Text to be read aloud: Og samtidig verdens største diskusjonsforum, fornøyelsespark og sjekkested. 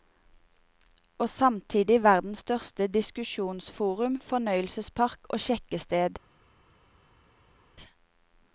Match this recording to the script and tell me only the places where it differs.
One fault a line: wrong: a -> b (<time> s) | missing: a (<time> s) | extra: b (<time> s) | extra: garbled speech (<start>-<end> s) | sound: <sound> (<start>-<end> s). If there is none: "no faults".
no faults